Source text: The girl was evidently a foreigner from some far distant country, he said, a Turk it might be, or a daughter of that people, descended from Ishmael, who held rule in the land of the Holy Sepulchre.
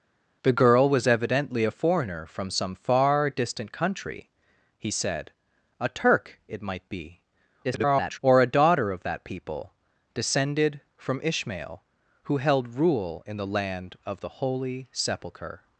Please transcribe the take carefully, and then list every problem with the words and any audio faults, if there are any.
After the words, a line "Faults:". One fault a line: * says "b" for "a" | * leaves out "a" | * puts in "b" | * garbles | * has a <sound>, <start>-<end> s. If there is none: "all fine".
The girl was evidently a foreigner from some far distant country, he said, a Turk it might be, [garbled] or a daughter of that people, descended from Ishmael, who held rule in the land of the Holy Sepulchre.
Faults:
* garbles